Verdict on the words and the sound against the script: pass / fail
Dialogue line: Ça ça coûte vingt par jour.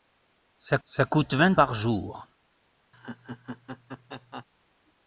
fail